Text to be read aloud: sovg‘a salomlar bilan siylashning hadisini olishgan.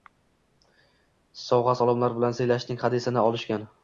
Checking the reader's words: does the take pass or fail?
pass